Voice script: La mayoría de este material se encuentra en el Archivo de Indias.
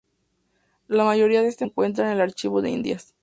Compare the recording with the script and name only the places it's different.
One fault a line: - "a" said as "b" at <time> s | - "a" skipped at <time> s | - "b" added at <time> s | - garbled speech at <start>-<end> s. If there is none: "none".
- "material se" skipped at 1.7 s